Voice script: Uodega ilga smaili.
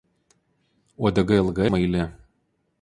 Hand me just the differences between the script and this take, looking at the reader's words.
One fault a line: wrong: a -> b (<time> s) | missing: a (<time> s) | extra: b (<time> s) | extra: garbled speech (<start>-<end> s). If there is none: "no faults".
no faults